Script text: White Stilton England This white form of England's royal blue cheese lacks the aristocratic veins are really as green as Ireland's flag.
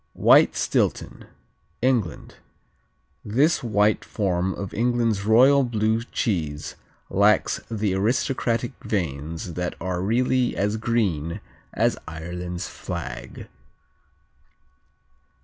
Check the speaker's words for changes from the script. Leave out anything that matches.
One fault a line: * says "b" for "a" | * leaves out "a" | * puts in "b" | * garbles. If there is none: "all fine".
* puts in "that"